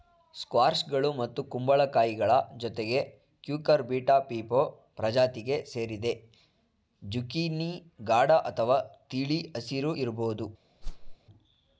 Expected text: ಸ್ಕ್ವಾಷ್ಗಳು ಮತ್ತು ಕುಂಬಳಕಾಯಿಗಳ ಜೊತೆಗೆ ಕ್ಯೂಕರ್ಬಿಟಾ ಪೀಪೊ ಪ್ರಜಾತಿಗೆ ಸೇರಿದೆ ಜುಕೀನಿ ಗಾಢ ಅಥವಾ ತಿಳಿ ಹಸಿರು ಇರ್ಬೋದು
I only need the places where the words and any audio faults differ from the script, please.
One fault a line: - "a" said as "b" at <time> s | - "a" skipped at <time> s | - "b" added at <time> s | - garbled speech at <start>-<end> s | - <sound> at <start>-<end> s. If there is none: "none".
- whoosh at 10.8-11.2 s